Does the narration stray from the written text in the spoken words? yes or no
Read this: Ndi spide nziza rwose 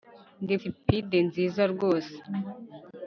no